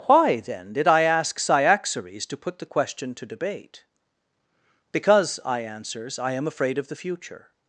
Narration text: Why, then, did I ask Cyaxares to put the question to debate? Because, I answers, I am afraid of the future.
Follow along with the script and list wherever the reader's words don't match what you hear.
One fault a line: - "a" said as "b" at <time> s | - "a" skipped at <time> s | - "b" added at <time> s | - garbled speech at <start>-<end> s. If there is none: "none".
none